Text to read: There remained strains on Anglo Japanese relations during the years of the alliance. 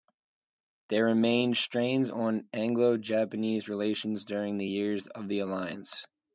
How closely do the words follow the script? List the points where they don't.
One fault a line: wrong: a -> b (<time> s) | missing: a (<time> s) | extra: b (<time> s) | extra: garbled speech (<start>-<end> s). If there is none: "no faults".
no faults